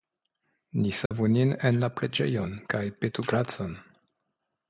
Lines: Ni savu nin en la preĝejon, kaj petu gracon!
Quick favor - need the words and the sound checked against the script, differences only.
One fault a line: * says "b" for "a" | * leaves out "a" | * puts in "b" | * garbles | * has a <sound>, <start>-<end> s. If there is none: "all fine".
* has a dropout, 1.1-1.1 s